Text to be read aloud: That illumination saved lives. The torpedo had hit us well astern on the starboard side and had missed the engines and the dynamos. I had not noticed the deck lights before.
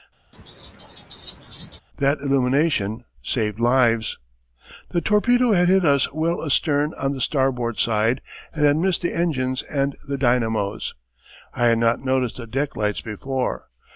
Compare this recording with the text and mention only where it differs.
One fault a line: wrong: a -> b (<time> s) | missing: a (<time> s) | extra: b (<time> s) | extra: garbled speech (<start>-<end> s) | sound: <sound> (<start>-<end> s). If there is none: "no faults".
sound: laugh (0.3-1.8 s)